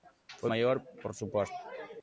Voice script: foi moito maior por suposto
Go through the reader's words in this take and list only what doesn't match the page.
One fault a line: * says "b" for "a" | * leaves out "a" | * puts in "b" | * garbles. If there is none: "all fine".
* leaves out "moito"